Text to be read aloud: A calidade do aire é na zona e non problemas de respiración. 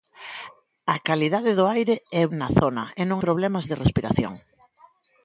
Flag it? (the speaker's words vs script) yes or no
no